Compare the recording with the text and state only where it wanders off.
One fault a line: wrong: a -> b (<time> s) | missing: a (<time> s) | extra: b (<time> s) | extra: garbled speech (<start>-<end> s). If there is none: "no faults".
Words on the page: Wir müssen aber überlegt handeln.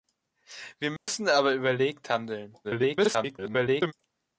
extra: garbled speech (2.6-3.9 s)